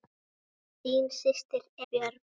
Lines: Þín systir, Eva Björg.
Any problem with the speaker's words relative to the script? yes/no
yes